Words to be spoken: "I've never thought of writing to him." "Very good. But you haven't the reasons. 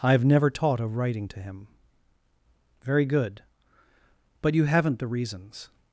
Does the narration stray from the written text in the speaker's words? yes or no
yes